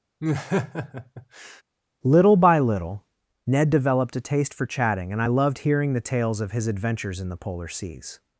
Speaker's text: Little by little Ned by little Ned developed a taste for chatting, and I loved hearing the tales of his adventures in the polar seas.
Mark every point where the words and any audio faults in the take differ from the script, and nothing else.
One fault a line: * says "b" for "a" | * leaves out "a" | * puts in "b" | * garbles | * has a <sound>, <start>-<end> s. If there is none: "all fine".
* has a laugh, 0.2-1.6 s
* leaves out "by little Ned"